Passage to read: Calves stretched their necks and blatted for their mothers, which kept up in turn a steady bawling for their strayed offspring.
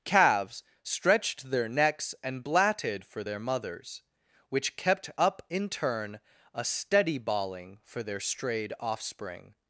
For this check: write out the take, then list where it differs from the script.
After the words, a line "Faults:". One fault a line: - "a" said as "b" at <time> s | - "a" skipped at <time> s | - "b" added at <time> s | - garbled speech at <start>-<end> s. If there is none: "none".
Calves stretched their necks and blatted for their mothers, which kept up in turn a steady bawling for their strayed offspring.
Faults:
none